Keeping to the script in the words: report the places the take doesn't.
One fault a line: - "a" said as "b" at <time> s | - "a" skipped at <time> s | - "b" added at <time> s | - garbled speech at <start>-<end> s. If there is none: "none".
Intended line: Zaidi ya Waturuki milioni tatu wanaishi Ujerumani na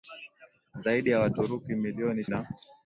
- "tatu wanaishi Ujerumani" skipped at 2.2 s